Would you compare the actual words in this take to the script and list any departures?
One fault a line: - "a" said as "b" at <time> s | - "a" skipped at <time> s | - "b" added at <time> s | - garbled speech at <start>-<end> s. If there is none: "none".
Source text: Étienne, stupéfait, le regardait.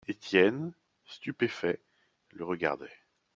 none